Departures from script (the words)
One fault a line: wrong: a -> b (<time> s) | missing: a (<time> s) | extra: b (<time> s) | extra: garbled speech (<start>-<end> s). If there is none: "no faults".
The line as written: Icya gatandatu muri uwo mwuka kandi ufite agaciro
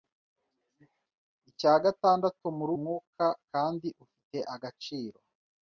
missing: uwo (2.7 s)